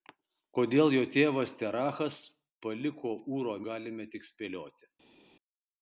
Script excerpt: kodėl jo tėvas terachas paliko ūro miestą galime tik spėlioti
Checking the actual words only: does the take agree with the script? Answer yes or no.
no